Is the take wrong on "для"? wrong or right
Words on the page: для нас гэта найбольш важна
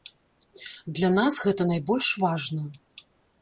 right